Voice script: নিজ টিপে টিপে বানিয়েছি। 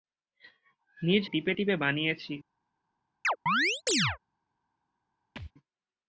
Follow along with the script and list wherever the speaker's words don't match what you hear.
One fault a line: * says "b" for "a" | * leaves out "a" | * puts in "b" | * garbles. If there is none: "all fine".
all fine